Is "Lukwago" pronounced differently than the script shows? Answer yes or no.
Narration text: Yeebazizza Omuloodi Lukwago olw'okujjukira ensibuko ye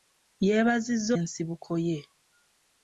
yes